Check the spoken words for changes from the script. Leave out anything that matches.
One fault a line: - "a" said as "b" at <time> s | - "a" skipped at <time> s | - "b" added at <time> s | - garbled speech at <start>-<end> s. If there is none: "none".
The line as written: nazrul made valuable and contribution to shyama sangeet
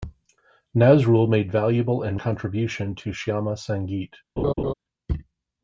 none